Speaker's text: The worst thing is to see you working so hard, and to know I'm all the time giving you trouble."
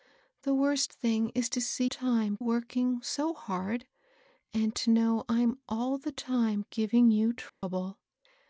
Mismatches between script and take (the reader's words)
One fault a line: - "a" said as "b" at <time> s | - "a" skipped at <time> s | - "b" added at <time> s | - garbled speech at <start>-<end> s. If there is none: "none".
- "you" said as "time" at 1.8 s